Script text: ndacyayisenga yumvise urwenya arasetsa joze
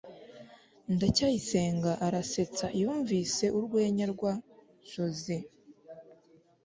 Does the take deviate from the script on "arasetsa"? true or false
true